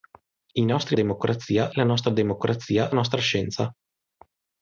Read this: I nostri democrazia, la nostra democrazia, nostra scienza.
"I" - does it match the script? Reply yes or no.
yes